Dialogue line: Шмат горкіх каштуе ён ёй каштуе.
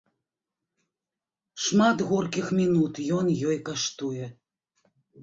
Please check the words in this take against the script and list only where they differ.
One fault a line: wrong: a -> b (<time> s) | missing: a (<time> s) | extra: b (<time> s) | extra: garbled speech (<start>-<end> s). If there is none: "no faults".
wrong: каштуе -> мінут (2.6 s)